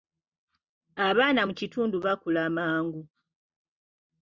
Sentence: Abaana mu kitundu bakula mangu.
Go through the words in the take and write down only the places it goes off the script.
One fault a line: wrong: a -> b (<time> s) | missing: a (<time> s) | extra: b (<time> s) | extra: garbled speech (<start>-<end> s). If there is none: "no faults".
no faults